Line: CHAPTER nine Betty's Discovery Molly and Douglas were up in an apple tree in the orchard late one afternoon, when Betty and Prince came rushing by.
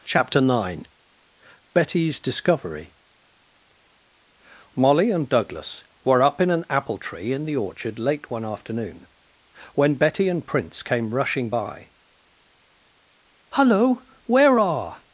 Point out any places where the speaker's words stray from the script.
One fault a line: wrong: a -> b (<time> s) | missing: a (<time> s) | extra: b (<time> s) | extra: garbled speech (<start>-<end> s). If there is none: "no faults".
extra: Hullo where are (13.5 s)